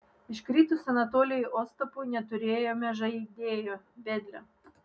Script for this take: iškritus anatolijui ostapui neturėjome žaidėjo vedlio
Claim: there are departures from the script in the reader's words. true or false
false